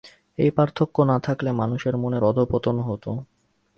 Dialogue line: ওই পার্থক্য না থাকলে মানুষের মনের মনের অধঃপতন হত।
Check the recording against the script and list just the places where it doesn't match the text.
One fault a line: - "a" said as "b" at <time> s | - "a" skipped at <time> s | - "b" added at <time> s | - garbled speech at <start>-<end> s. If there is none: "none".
- "ওই" said as "এই" at 0.4 s
- "মনের" skipped at 2.2 s